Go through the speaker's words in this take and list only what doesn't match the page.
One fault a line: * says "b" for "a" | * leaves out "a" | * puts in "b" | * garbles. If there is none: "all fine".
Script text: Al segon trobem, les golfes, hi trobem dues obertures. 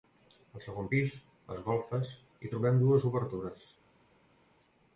* says "pis" for "trobem"